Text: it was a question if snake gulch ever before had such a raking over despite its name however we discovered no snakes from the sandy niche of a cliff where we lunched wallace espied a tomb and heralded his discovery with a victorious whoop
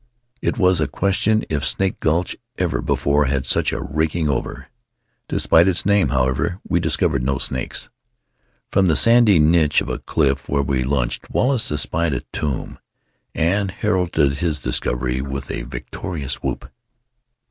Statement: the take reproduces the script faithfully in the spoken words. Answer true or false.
true